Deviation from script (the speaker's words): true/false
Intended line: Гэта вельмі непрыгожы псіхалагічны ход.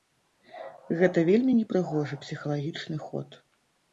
false